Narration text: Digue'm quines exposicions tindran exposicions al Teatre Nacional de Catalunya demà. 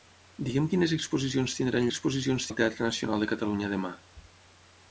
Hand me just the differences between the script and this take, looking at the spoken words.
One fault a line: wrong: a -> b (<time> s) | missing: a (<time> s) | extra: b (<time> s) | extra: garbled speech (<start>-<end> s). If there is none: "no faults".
no faults